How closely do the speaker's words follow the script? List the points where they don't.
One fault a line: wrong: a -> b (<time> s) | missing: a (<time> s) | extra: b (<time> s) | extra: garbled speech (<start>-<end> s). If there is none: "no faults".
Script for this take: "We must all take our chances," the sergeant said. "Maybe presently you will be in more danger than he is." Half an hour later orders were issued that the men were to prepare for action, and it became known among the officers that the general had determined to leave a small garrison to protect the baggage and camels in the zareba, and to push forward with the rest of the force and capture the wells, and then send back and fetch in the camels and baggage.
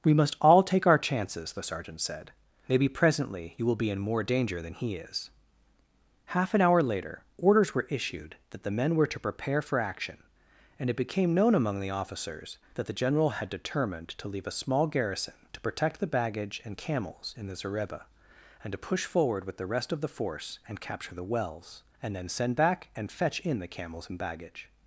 no faults